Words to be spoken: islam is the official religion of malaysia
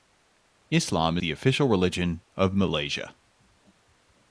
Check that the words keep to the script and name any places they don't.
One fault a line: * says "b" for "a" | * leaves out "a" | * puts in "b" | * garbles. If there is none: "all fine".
* leaves out "is"